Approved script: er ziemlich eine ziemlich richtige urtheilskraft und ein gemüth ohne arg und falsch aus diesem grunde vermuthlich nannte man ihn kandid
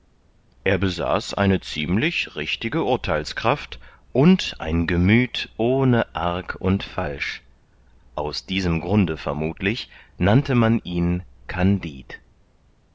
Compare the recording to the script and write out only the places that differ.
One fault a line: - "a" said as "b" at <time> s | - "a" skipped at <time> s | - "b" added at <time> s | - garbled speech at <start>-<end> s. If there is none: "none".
- "ziemlich" said as "besaß" at 0.8 s